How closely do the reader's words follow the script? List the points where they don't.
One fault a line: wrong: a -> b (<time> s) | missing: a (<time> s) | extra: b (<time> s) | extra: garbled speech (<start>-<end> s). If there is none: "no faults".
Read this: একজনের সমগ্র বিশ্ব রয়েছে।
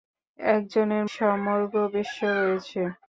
no faults